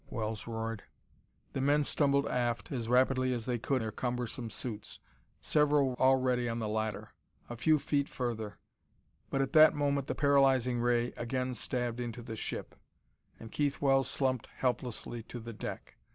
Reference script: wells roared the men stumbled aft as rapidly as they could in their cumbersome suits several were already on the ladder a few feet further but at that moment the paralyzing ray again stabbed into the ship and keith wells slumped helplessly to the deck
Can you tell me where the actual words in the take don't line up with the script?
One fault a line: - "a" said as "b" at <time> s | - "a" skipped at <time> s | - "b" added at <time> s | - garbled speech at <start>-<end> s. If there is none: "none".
- "in" skipped at 3.8 s
- "were" skipped at 5.9 s